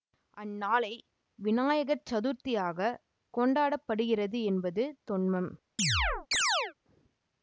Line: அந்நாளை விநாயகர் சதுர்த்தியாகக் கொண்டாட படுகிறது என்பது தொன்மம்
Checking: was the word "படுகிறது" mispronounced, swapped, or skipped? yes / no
no